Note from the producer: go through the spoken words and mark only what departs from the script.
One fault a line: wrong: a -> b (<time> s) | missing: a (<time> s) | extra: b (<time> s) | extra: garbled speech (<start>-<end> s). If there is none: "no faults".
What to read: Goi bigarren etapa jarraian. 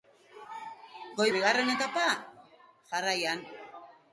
no faults